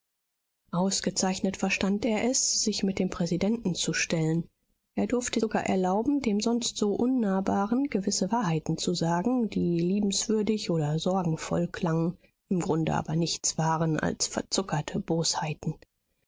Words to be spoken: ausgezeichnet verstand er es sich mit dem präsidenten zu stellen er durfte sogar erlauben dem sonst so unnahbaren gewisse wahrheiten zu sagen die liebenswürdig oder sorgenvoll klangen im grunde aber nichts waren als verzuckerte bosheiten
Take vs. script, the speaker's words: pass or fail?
pass